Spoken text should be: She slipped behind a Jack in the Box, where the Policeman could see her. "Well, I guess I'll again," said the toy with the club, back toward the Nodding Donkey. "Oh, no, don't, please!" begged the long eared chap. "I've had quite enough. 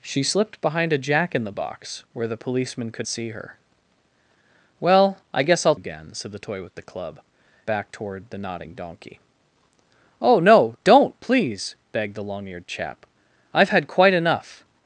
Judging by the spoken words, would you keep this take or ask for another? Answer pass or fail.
pass